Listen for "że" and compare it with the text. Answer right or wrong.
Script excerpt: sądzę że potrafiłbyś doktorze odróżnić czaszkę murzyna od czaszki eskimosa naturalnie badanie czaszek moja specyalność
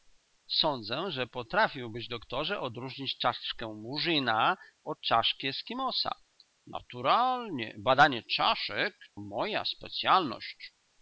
right